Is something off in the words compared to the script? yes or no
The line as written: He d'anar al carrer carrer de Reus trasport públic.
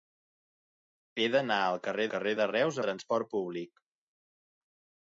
no